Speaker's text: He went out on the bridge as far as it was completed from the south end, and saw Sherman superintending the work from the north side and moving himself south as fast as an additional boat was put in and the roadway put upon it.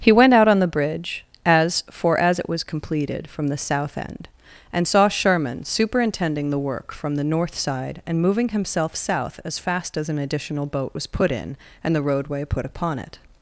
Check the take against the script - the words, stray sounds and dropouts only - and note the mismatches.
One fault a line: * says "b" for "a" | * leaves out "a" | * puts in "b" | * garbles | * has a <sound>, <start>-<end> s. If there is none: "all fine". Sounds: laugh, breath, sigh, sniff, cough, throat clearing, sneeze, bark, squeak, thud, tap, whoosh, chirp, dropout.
* says "for" for "far"